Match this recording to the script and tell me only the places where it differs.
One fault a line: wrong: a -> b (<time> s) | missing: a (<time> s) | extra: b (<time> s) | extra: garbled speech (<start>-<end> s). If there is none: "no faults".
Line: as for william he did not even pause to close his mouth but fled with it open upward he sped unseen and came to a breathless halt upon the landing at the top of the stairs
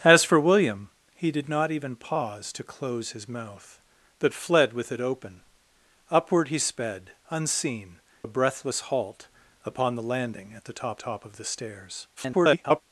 missing: and came to (8.0 s)
extra: top (11.0 s)
extra: garbled speech (12.2-12.8 s)